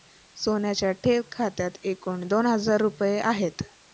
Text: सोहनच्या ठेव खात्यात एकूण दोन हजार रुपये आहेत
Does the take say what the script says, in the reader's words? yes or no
yes